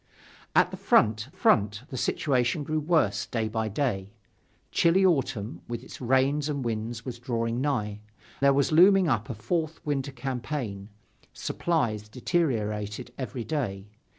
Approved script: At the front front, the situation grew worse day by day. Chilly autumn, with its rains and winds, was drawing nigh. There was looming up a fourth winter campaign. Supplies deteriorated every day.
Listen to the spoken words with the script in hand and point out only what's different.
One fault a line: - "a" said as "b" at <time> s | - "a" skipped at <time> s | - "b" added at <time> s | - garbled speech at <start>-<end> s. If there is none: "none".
none